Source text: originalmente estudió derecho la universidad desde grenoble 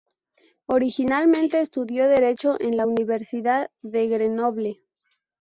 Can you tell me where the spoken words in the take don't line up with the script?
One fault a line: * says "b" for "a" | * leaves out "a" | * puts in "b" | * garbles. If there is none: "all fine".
* puts in "en"
* says "de" for "desde"